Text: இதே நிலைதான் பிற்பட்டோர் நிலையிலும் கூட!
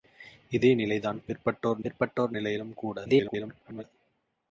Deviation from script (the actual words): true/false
true